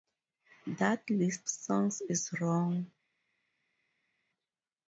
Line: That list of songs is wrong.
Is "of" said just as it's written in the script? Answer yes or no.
no